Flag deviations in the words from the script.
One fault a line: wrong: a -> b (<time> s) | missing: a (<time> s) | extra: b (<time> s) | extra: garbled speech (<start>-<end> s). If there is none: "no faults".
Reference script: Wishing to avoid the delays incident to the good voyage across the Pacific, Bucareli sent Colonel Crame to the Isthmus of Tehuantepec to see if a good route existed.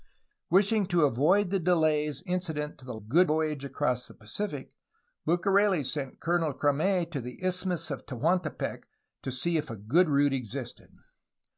no faults